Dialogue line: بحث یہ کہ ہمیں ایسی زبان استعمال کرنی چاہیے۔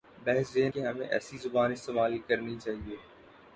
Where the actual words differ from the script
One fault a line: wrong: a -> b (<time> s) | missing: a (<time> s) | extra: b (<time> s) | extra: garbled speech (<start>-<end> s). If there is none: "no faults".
no faults